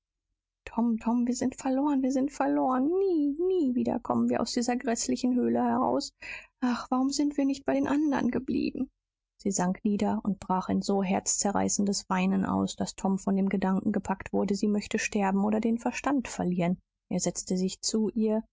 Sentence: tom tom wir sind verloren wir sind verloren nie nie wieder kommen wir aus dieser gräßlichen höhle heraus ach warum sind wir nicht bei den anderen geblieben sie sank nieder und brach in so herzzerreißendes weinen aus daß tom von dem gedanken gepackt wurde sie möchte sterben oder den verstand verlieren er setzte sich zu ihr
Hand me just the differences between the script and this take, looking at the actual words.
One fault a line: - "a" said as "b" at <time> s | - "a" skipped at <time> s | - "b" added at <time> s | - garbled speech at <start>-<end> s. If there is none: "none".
none